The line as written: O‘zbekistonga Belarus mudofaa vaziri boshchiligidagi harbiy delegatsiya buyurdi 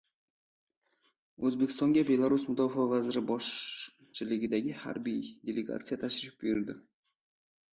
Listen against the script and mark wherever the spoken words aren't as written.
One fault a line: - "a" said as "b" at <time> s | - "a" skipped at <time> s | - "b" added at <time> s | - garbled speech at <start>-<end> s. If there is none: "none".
- "tashrif" added at 6.1 s